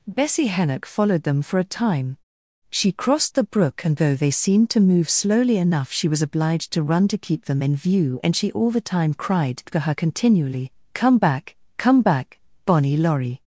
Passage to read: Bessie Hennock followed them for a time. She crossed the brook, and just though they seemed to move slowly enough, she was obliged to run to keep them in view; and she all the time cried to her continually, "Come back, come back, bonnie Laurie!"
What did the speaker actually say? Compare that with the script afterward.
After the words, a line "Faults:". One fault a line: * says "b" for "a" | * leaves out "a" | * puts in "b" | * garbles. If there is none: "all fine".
Bessie Hennock followed them for a time. She crossed the brook, and though they seemed to move slowly enough, she was obliged to run to keep them in view; and she all the time cried to her continually, "Come back, come back, bonnie Laurie!"
Faults:
* leaves out "just"